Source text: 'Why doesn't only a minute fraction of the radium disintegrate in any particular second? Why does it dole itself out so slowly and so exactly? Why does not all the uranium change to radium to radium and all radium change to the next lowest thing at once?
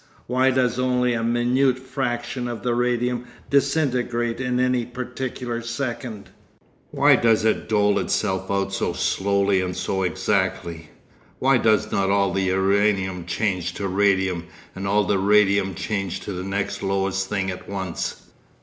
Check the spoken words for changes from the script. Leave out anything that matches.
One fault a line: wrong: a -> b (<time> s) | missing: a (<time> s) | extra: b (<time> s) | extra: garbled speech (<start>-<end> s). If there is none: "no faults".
wrong: doesn't -> does (0.5 s)
missing: to radium (14.5 s)
extra: the (15.0 s)